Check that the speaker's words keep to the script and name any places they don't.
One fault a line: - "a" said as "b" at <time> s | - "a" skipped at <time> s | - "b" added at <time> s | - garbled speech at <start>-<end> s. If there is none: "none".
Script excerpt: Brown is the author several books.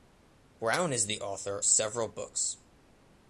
none